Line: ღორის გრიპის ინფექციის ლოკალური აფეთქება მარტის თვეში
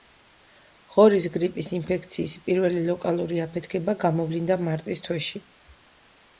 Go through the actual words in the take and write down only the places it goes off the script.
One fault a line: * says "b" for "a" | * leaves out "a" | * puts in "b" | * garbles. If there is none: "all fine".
* puts in "პირველი"
* puts in "გამოვლინდა"